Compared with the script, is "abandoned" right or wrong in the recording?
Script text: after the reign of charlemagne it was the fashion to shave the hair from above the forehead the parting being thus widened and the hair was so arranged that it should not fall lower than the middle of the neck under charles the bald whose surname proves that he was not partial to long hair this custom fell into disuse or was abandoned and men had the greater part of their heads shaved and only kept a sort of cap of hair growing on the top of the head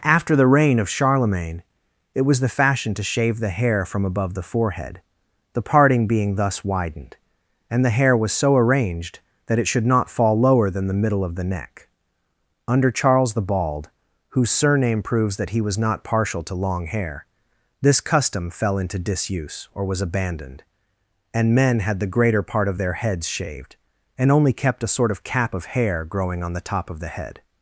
right